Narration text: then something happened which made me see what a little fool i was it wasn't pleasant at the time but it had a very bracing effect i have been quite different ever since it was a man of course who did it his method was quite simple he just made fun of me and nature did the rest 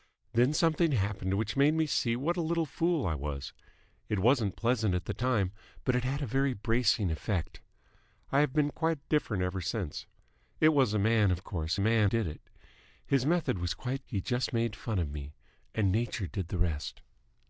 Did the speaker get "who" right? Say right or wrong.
wrong